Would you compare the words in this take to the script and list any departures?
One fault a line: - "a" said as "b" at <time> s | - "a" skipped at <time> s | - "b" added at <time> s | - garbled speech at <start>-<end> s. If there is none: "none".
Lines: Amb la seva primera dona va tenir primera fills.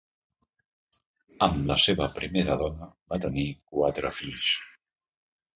- "primera" said as "quatre" at 3.7 s